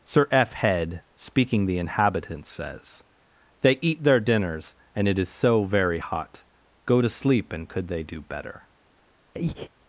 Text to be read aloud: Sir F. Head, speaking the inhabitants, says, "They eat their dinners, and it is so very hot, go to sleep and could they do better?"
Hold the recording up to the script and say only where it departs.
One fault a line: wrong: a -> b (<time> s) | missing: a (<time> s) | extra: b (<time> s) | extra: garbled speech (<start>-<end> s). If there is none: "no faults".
no faults